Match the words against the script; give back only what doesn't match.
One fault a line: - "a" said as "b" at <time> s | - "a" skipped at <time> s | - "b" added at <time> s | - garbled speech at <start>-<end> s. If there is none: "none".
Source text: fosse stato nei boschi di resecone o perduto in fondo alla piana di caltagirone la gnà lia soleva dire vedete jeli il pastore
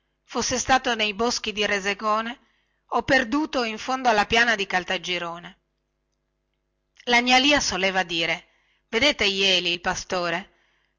none